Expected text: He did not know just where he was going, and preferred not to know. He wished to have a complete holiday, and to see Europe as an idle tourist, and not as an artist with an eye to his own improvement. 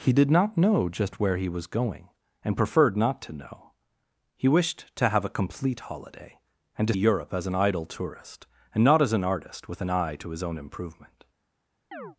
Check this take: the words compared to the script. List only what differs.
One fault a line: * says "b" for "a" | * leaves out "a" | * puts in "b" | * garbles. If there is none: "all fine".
* leaves out "see"